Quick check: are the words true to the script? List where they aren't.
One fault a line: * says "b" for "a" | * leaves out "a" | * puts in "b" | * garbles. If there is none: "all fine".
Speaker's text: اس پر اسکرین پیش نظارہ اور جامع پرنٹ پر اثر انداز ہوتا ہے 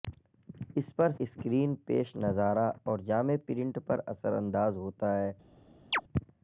all fine